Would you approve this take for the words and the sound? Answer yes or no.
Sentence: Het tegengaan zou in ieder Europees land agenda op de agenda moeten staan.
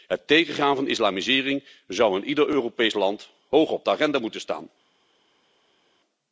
no